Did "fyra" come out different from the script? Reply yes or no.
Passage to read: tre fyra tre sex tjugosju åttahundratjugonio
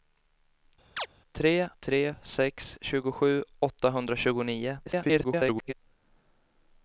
yes